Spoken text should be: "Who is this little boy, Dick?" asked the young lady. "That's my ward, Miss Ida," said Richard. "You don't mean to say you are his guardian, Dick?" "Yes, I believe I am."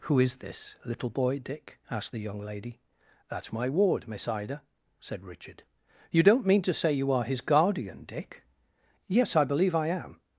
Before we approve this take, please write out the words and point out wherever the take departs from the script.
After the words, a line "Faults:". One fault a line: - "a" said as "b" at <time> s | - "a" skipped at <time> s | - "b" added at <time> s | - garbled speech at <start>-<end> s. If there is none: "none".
"Who is this little boy, Dick?" asked the young lady. "That's my ward, Miss Ida," said Richard. "You don't mean to say you are his guardian, Dick?" "Yes, I believe I am."
Faults:
none